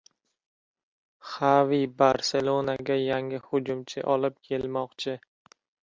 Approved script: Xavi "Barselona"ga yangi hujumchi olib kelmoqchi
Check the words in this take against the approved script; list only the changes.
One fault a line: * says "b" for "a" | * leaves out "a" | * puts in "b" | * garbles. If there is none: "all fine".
all fine